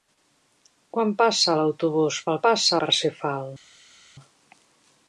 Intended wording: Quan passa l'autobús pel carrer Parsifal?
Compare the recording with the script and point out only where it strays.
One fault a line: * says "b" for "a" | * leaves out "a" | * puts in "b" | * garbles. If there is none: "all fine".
* says "passa" for "carrer"